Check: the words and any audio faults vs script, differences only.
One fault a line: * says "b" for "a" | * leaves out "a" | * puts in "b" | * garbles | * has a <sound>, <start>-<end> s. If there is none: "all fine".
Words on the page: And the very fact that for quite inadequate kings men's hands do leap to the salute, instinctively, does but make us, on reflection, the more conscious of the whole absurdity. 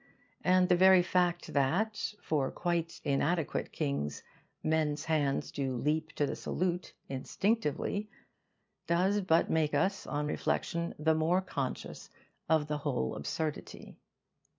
all fine